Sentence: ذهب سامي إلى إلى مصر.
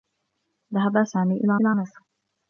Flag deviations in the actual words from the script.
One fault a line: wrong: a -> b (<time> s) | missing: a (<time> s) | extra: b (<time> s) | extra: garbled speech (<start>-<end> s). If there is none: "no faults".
no faults